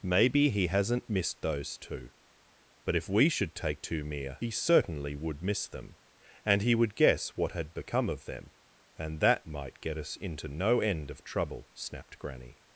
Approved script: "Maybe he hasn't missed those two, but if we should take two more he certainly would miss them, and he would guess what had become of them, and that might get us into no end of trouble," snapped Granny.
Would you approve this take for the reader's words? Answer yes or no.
no